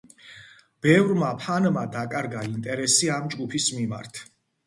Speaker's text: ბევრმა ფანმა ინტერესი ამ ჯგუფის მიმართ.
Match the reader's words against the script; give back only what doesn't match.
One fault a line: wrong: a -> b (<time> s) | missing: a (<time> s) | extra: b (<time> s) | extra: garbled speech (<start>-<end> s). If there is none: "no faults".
extra: დაკარგა (2.0 s)